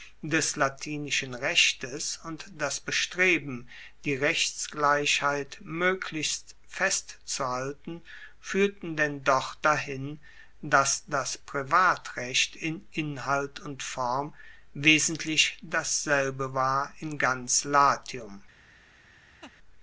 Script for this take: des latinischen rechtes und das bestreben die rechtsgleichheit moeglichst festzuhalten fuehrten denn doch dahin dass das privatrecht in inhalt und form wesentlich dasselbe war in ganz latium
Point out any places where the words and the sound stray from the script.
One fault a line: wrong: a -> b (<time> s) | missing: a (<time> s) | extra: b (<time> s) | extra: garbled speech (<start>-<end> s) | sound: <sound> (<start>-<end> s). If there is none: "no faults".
sound: laugh (19.4-19.5 s)